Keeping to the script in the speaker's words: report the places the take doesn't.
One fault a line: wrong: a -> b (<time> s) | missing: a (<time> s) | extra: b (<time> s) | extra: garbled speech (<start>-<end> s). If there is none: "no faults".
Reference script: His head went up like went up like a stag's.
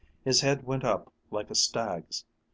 missing: went up like (1.5 s)